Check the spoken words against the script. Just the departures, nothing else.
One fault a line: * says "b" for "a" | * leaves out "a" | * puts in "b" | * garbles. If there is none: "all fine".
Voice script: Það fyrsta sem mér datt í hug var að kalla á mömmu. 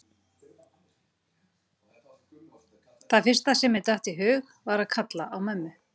all fine